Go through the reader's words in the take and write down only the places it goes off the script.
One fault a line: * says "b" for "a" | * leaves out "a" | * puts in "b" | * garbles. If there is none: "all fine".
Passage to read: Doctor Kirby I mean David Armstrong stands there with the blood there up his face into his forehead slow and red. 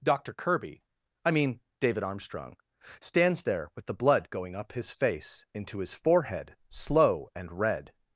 * says "going" for "there"